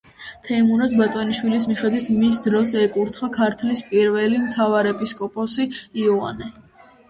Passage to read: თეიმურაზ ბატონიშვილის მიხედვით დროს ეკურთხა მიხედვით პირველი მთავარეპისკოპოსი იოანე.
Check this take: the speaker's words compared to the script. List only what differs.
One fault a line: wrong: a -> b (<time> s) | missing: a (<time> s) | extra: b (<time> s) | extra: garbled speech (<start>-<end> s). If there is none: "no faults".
extra: მის (2.2 s)
wrong: მიხედვით -> ქართლის (3.4 s)